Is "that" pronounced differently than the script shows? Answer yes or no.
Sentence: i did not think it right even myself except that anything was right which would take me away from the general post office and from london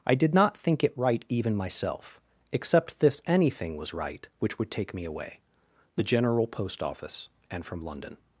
yes